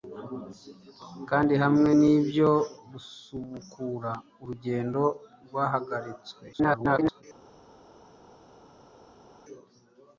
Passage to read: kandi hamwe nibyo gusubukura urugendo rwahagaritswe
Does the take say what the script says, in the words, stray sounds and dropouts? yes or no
no